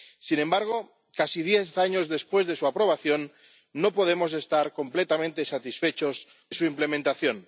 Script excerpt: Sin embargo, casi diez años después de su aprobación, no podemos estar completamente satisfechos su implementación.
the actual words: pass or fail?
pass